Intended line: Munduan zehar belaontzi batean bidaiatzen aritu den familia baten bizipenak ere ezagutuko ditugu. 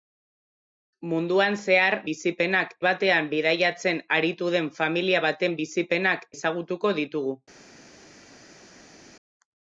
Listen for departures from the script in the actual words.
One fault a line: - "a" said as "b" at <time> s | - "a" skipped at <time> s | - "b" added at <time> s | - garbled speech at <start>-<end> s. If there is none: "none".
- "belaontzi" said as "bizipenak" at 2.1 s
- "ere" skipped at 6.3 s